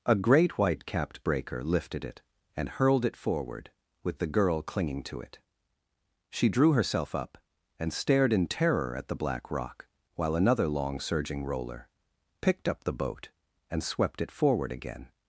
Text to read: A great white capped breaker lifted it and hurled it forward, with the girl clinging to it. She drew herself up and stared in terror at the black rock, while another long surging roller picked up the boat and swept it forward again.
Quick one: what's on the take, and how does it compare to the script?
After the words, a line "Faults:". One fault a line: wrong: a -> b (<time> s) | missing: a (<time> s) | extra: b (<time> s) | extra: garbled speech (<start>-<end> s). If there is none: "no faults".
A great white capped breaker lifted it and hurled it forward, with the girl clinging to it. She drew herself up and stared in terror at the black rock, while another long surging roller picked up the boat and swept it forward again.
Faults:
no faults